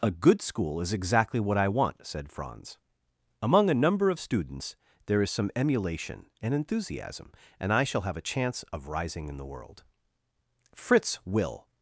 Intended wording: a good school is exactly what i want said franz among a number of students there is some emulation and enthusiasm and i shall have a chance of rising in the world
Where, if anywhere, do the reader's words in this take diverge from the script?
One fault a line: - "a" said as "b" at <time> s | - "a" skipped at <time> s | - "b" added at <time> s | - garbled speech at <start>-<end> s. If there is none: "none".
- "fritz will" added at 10.7 s